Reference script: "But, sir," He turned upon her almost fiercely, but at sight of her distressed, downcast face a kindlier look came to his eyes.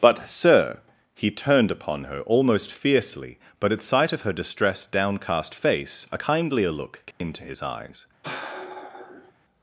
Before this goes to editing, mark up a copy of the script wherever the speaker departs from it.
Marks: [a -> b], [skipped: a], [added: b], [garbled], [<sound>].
"But, sir," He turned upon her almost fiercely, but at sight of her distressed, downcast face a kindlier look came [dropout] to his eyes. [sigh]